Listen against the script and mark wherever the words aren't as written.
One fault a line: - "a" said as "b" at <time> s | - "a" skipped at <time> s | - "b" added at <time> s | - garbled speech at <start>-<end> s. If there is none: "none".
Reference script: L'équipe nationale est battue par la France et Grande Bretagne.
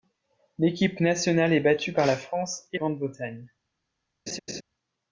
none